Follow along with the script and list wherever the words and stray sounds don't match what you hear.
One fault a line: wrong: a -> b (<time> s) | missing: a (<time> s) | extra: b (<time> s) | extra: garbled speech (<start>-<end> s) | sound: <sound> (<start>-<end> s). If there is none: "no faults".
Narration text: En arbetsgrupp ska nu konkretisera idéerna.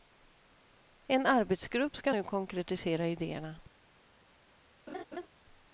sound: laugh (4.9-5.3 s)